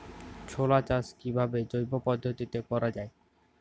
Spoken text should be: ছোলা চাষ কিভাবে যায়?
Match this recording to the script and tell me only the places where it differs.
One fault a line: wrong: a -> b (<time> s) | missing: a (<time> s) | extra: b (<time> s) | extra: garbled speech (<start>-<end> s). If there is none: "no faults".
extra: জৈব পদ্ধতিতে করা (1.7 s)